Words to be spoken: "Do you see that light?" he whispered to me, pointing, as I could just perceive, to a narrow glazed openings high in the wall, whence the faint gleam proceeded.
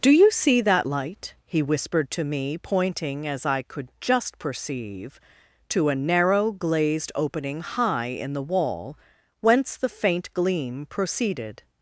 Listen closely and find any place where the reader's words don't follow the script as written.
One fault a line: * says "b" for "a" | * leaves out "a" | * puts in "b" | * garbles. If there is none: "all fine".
* says "opening" for "openings"